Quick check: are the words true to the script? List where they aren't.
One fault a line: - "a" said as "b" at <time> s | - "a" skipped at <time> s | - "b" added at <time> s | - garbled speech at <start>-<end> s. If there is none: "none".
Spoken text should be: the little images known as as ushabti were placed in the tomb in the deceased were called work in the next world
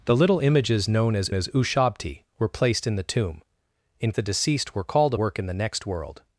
none